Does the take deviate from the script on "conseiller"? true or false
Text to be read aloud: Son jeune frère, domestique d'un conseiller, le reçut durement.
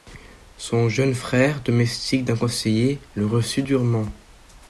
false